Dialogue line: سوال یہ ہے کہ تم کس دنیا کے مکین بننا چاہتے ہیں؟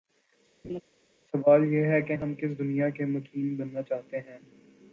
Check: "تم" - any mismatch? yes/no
yes